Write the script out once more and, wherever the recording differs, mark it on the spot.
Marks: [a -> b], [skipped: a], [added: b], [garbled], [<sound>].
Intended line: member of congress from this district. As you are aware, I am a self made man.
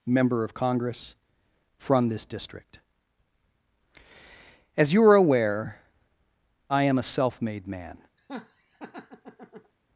member of congress from this district. As you are aware, I am a self made man. [laugh]